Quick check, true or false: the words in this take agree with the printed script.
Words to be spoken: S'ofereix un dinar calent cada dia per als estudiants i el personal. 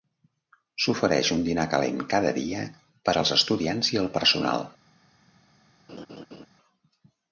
true